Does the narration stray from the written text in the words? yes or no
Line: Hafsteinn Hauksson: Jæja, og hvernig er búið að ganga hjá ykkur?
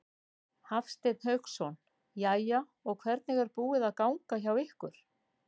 no